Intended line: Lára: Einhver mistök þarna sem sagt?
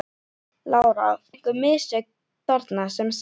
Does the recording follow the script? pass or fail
pass